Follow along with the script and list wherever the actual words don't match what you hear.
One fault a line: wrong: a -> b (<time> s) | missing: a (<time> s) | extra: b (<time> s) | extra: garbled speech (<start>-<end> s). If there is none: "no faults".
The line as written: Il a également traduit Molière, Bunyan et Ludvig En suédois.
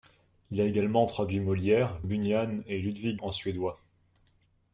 no faults